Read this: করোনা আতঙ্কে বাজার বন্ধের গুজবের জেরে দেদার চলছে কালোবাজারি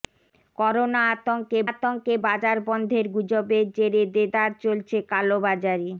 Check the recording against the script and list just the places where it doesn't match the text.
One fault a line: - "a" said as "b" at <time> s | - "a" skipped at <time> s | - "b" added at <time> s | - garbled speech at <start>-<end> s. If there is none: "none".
- "আতঙ্কে" added at 1.7 s